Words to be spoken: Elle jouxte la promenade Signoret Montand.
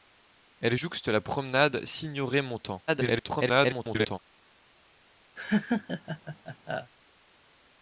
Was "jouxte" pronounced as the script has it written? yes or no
yes